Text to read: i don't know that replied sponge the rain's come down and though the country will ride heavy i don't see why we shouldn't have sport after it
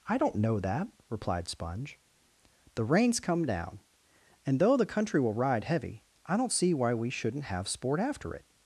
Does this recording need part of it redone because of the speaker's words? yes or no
no